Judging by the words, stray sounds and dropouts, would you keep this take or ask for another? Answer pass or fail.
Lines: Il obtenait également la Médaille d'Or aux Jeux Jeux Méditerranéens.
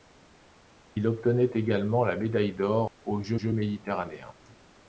fail